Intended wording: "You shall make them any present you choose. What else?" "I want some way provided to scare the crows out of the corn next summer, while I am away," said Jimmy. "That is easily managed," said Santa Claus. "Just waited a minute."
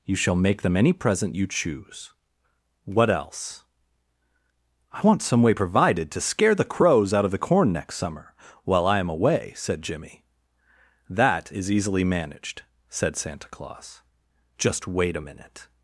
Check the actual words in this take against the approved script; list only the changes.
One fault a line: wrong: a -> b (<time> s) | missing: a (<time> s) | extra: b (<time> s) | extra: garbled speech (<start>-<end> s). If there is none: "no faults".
wrong: waited -> wait (14.9 s)